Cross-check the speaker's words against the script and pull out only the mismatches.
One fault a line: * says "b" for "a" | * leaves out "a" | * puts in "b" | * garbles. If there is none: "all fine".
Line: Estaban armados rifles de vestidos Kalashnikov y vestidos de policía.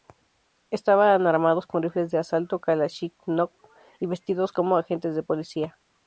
* puts in "con"
* says "asalto" for "vestidos"
* puts in "como agentes"